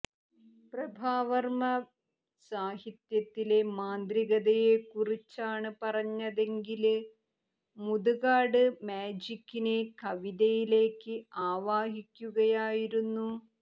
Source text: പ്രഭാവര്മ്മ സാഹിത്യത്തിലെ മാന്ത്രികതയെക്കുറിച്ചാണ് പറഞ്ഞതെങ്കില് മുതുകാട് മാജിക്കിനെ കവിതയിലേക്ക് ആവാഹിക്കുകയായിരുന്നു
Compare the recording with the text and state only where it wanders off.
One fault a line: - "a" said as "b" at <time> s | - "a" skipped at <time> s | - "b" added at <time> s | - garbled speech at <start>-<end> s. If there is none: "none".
none